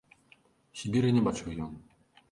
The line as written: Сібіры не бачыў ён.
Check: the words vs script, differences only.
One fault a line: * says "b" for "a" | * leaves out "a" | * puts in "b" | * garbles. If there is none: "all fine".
all fine